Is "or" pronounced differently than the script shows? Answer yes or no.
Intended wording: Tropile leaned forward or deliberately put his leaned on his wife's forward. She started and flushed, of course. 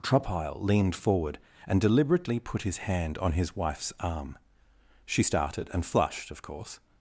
yes